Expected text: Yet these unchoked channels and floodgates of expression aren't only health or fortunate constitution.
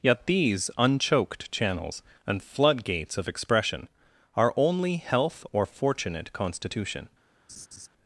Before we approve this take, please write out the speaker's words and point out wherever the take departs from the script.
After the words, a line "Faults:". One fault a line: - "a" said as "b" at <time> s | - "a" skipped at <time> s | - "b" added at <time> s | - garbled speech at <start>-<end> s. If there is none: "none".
Yet these unchoked channels and floodgates of expression are only health or fortunate constitution.
Faults:
- "aren't" said as "are" at 4.3 s